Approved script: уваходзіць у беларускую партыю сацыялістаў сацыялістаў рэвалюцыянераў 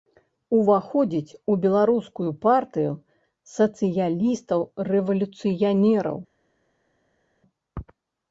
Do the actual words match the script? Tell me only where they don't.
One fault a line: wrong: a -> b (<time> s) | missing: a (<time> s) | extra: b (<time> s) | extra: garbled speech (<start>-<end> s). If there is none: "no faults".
missing: сацыялістаў (4.6 s)